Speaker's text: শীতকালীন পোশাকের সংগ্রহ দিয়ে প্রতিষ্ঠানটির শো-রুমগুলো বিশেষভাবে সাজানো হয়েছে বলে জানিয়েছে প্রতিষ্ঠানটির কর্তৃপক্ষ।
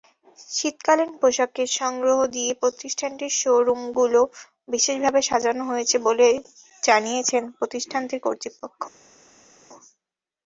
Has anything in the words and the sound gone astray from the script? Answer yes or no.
no